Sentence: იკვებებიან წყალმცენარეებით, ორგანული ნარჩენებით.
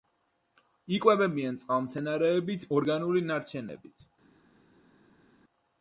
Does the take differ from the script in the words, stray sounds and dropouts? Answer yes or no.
no